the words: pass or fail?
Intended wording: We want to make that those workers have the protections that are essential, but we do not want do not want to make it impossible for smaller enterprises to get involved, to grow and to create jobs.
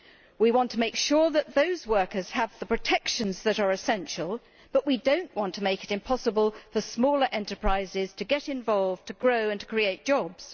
fail